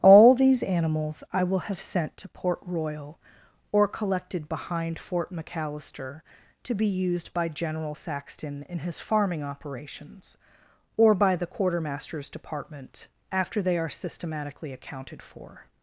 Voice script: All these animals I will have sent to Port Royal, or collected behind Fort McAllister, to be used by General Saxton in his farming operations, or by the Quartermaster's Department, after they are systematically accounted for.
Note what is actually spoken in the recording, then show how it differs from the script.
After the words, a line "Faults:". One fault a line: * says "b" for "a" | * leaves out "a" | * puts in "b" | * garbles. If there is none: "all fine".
All these animals I will have sent to Port Royal, or collected behind Fort McAllister, to be used by General Saxton in his farming operations, or by the Quartermaster's Department, after they are systematically accounted for.
Faults:
all fine